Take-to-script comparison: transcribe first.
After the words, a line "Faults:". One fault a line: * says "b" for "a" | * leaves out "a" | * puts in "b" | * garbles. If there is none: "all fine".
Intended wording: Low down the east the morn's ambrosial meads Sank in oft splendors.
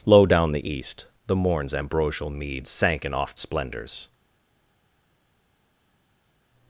Low down the east the morn's ambrosial meads Sank in oft splendors.
Faults:
all fine